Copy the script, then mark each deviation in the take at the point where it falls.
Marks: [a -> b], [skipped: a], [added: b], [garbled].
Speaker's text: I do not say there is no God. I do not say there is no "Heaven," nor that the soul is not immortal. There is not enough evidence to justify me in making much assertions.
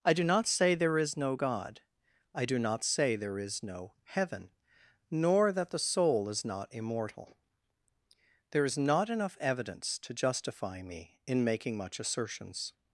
I do not say there is no God. I do not say there is no "Heaven," nor that the soul is not immortal. There is not enough evidence to justify me in making much assertions.